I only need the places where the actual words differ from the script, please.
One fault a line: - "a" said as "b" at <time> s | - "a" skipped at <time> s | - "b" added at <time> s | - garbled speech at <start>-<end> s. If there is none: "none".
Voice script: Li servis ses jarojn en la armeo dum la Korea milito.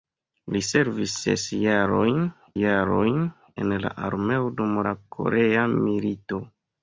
- "jarojn" added at 2.6 s